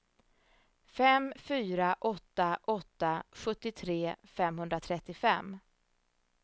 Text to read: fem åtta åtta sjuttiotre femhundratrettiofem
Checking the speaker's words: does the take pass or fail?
fail